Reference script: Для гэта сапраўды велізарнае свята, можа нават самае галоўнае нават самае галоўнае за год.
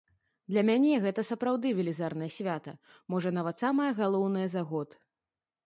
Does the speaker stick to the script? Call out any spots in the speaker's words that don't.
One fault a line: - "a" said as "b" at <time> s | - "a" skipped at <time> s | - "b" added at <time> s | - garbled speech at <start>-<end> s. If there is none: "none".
- "мяне" added at 0.7 s
- "нават самае галоўнае" skipped at 4.5 s